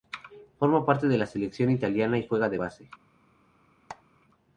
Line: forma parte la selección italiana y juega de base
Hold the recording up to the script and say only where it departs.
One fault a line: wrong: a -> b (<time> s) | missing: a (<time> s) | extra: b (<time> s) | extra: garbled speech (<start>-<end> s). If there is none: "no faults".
extra: de (1.1 s)